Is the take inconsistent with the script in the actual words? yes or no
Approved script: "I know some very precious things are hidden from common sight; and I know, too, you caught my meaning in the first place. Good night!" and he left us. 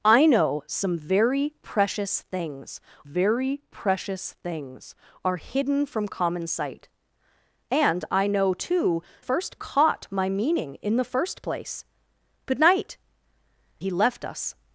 yes